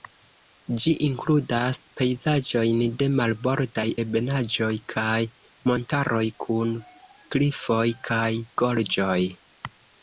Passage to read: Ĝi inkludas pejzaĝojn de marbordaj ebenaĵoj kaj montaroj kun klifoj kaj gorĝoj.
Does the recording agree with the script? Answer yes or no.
yes